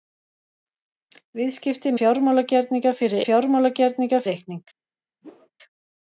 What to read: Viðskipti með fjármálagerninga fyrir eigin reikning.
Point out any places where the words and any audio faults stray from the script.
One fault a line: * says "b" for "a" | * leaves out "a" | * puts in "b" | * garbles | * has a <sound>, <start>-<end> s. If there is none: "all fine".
* leaves out "með"
* says "fjármálagerninga" for "eigin"
* has a whoosh, 5.2-5.5 s